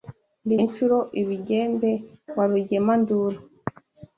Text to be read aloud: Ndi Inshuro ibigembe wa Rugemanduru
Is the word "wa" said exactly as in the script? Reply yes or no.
yes